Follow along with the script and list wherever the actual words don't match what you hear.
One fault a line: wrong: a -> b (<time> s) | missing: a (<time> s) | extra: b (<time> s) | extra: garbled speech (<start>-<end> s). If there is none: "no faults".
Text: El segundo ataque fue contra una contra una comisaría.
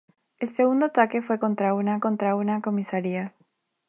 no faults